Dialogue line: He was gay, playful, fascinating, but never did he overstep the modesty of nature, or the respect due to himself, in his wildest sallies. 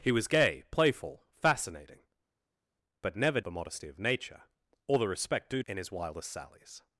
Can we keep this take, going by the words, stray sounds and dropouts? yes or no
no